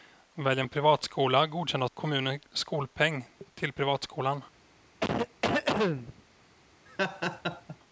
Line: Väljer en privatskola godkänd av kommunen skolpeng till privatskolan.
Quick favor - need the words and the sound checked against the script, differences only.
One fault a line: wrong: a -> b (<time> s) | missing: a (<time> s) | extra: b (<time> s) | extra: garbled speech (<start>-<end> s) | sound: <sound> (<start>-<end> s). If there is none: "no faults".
sound: cough (5.0-6.2 s)
sound: laugh (6.9-7.8 s)